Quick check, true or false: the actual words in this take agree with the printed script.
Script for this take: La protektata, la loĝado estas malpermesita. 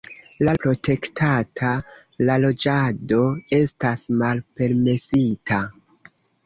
true